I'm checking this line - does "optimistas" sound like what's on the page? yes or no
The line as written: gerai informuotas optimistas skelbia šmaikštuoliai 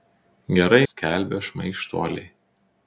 no